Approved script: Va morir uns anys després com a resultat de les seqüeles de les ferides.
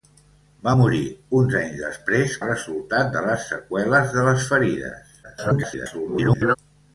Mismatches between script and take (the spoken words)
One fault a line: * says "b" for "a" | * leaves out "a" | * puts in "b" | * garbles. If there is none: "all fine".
* leaves out "com"
* garbles